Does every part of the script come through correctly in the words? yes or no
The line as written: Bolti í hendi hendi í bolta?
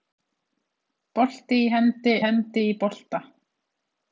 yes